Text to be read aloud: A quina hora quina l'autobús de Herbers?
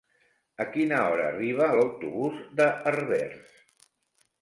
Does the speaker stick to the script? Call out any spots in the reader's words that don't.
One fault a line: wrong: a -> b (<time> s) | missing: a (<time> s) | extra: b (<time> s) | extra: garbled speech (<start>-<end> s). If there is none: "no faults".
wrong: quina -> arriba (1.3 s)